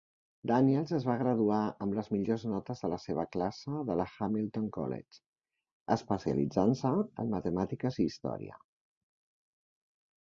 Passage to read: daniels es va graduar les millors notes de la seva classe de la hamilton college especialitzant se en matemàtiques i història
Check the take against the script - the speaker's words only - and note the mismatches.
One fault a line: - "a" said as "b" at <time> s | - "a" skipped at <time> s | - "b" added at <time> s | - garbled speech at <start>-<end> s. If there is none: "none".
- "amb" added at 1.9 s